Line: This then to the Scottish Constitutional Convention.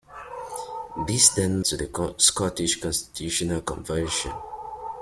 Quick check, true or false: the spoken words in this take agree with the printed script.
true